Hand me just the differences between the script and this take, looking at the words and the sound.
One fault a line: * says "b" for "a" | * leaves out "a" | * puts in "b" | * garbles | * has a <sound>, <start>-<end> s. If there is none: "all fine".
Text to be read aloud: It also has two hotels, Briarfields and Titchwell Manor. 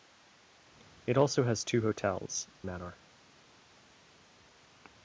* leaves out "Briarfields and Titchwell"